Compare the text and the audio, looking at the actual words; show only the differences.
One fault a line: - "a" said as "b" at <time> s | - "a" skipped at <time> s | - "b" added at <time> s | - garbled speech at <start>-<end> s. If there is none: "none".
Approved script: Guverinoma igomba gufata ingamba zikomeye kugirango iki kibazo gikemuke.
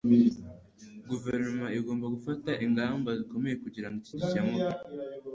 - "kibazo" skipped at 4.1 s